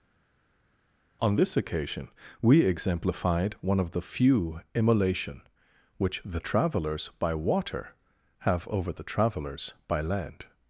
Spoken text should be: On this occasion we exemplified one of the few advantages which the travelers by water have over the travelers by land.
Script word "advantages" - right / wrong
wrong